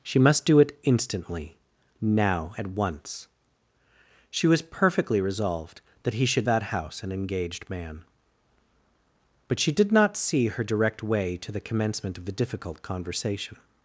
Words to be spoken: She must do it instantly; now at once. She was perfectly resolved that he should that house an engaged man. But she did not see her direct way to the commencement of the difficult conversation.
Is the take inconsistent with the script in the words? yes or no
no